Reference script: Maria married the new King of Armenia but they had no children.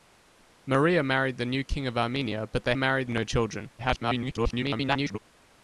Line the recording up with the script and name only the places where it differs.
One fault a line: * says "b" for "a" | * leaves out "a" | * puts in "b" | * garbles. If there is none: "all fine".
* says "married" for "had"
* garbles